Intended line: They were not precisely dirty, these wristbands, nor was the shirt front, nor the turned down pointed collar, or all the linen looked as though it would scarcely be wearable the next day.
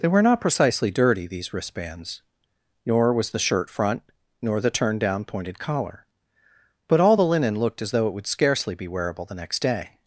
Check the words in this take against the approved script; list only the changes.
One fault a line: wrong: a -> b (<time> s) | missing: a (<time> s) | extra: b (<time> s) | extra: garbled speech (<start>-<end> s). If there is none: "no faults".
wrong: or -> but (6.9 s)